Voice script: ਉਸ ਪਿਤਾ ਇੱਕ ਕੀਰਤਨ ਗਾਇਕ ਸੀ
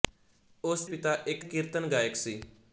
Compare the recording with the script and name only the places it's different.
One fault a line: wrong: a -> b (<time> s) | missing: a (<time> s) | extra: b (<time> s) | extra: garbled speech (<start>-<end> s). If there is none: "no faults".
no faults